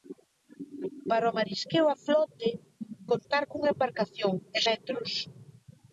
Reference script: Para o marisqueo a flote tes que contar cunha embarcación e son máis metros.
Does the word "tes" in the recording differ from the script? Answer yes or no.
yes